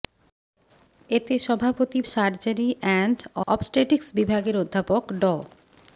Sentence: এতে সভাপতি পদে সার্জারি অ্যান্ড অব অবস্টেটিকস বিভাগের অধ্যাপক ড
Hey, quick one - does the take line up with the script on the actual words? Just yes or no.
no